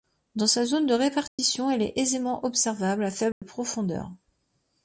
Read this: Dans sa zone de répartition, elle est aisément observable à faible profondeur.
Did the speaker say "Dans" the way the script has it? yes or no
yes